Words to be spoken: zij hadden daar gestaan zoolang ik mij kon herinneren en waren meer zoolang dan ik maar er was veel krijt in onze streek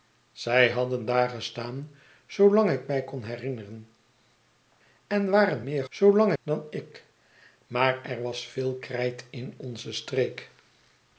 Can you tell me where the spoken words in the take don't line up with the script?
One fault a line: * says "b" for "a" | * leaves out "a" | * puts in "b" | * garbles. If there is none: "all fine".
all fine